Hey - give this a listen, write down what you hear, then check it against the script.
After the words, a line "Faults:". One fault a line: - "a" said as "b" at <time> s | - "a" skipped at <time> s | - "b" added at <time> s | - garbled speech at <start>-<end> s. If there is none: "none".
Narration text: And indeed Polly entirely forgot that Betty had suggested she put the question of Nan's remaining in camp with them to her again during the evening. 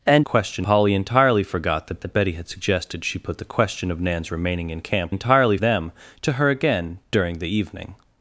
And question Polly entirely forgot that that Betty had suggested she put the question of Nan's remaining in camp entirely them to her again during the evening.
Faults:
- "indeed" said as "question" at 0.2 s
- "that" added at 2.0 s
- "with" said as "entirely" at 5.1 s